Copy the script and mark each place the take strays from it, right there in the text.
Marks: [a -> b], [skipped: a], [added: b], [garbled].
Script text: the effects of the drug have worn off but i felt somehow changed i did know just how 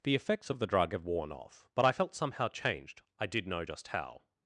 the effects of the drug have worn off but i felt somehow changed i did know just how